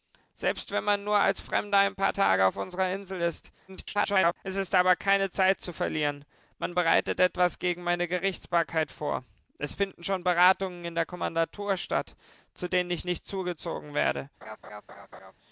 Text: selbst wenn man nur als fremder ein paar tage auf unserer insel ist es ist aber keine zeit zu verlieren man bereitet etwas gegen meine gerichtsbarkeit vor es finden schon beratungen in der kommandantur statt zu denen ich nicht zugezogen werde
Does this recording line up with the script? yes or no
no